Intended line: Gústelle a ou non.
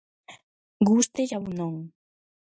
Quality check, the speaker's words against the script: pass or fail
pass